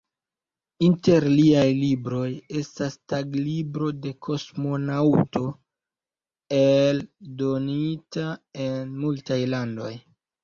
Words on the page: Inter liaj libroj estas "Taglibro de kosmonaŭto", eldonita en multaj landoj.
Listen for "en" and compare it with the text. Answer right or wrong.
right